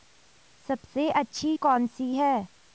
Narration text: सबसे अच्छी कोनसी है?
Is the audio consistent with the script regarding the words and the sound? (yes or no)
yes